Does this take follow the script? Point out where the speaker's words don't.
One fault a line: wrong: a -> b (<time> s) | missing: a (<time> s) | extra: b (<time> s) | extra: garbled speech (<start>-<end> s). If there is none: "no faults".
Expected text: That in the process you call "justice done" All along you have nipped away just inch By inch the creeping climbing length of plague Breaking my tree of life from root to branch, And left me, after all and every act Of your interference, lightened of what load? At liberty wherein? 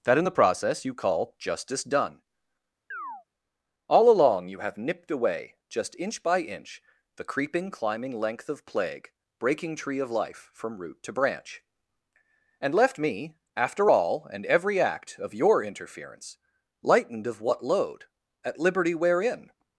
missing: my (9.7 s)